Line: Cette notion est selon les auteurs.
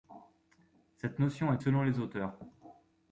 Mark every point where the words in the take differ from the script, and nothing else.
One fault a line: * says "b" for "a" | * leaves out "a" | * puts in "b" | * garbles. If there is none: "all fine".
all fine